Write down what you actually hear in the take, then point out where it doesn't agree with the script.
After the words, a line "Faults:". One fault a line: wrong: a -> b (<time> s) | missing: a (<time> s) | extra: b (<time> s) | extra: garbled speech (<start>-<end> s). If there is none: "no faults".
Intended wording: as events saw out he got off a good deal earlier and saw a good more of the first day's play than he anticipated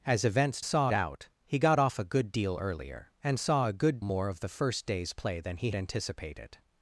as events saw out he got off a good deal earlier and saw a good more of the first day's play than he anticipated
Faults:
no faults